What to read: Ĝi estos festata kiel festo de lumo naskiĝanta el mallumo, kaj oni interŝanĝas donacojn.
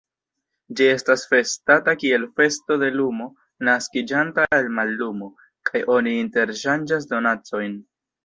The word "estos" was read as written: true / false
false